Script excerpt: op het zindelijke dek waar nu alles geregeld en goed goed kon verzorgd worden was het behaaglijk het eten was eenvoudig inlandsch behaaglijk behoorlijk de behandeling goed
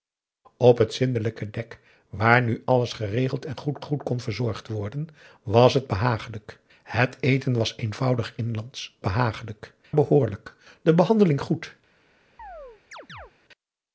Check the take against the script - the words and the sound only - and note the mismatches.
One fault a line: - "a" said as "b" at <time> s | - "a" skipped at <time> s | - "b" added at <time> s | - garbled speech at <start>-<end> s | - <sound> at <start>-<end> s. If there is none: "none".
- chirp at 12.4-13.3 s